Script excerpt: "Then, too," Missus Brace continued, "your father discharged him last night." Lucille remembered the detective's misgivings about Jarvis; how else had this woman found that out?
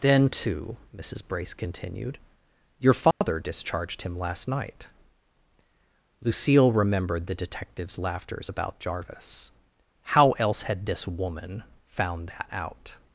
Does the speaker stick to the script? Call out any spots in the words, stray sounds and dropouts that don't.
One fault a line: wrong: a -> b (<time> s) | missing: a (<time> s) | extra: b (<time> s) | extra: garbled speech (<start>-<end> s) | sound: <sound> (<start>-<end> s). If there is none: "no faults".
sound: dropout (3.1-3.2 s)
wrong: misgivings -> laughters (8.0 s)